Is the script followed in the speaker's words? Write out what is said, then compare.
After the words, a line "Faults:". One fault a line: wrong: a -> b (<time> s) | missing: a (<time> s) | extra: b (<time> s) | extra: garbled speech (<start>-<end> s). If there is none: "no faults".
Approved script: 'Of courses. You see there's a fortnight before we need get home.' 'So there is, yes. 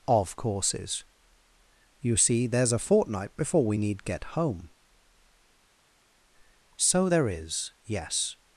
'Of courses. You see there's a fortnight before we need get home.' 'So there is, yes.
Faults:
no faults